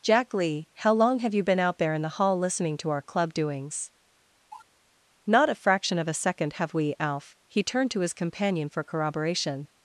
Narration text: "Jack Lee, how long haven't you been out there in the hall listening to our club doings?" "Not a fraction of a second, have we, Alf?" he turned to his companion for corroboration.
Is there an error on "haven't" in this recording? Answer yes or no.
yes